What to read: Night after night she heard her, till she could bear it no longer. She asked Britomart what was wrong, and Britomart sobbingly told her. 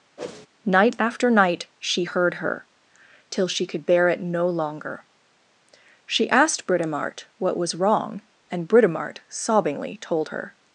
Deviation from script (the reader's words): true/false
false